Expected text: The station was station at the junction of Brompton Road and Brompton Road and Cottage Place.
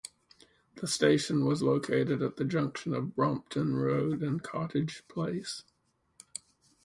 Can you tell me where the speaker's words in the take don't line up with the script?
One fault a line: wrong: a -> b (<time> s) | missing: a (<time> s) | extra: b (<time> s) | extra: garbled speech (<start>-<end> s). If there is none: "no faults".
wrong: station -> located (1.6 s)
missing: Brompton Road and (4.4 s)